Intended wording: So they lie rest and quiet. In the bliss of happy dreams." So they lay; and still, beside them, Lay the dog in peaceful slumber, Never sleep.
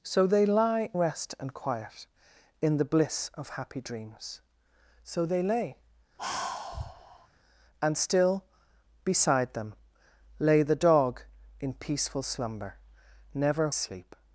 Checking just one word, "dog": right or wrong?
right